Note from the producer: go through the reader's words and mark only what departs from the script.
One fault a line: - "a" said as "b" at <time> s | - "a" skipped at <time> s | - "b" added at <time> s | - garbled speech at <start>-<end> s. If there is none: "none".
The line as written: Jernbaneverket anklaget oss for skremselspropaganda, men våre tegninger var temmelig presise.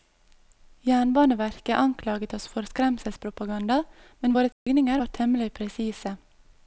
none